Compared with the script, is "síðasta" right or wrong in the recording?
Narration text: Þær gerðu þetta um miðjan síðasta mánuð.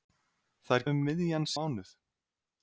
wrong